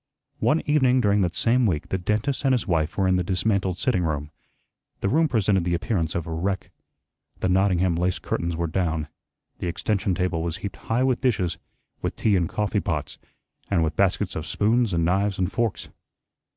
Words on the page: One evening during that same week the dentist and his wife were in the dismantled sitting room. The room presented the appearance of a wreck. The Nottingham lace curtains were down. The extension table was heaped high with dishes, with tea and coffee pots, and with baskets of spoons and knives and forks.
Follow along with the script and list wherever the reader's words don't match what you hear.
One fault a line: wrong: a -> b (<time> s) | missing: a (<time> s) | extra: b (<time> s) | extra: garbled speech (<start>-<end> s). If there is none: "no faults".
no faults